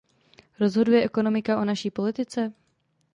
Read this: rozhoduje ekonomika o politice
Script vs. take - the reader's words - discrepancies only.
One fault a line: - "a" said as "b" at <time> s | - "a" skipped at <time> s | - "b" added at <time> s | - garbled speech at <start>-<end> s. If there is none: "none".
- "naší" added at 1.6 s